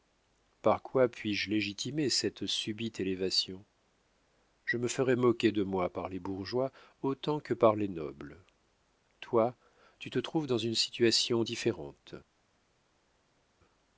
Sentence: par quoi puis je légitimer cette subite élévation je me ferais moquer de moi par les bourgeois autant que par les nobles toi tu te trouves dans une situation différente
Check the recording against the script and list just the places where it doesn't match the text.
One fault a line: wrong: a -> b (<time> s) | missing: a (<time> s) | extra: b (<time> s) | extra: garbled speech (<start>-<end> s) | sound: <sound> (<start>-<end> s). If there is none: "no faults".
no faults